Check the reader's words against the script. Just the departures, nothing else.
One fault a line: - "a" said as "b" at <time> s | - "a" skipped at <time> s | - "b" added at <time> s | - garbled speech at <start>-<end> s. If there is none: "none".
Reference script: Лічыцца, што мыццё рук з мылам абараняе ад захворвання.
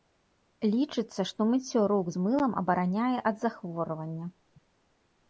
none